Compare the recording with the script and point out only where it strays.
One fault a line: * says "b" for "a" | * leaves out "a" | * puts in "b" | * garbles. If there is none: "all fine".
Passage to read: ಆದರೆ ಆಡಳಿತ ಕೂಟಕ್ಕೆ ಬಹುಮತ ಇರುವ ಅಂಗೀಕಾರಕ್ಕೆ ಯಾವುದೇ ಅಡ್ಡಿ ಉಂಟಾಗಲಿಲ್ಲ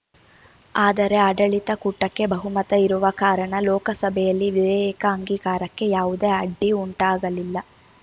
* puts in "ಕಾರಣ ಲೋಕಸಭೆಯಲ್ಲಿ ವಿಧೇಯಕ"